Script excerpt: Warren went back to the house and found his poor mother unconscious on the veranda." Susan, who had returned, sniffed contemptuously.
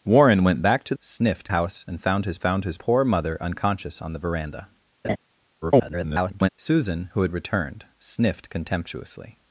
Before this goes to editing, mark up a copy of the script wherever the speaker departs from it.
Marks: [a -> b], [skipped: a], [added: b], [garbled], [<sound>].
Warren went back to [the -> sniffed] house and found his [added: found his] poor mother unconscious on the veranda." [laugh] [garbled] Susan, who had returned, sniffed contemptuously.